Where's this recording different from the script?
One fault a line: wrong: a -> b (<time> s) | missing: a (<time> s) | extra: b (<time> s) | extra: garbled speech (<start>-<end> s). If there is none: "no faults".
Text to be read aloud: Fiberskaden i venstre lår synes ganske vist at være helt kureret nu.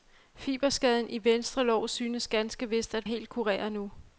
missing: være (3.1 s)